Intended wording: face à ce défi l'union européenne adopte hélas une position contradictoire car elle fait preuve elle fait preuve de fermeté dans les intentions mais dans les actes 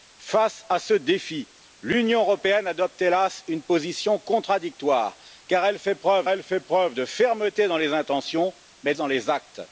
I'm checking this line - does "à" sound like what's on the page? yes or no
yes